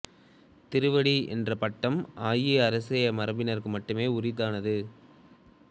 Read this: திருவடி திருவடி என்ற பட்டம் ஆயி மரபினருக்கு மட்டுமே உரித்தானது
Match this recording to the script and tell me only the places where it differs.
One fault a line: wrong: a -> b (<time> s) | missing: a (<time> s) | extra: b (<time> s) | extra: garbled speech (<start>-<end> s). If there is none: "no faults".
missing: திருவடி (1.1 s)
extra: அரச (2.7 s)